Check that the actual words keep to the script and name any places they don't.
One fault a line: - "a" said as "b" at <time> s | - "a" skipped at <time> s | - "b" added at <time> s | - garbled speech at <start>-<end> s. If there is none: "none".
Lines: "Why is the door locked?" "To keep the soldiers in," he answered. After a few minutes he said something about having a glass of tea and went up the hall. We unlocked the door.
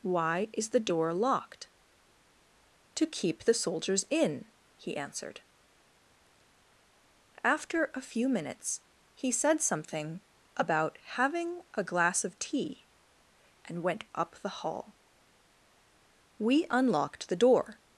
none